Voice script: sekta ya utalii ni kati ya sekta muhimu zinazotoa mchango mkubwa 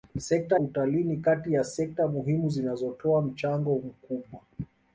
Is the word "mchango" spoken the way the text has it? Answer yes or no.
yes